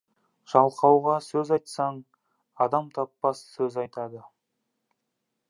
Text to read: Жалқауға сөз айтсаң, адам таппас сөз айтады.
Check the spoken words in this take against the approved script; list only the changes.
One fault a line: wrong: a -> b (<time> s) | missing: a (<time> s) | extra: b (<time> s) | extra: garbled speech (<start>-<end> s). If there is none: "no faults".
no faults